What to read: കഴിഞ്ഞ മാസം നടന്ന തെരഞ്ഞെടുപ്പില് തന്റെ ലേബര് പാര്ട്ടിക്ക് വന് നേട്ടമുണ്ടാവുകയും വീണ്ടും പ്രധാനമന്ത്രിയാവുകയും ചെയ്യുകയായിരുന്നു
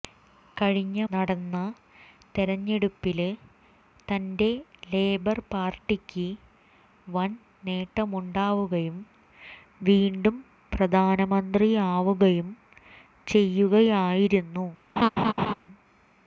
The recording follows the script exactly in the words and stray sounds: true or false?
false